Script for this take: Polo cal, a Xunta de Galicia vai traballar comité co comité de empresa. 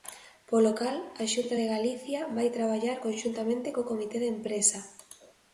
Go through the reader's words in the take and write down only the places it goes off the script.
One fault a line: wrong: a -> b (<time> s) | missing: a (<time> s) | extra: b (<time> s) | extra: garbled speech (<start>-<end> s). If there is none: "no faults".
wrong: comité -> conxuntamente (3.1 s)